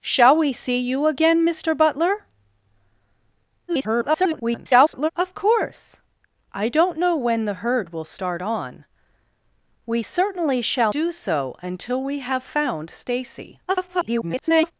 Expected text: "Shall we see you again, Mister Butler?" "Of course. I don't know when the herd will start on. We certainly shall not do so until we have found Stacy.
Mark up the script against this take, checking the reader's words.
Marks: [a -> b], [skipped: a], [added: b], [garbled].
"Shall we see you again, Mister Butler?" [garbled] "Of course. I don't know when the herd will start on. We certainly shall [skipped: not] do so until we have found Stacy. [garbled]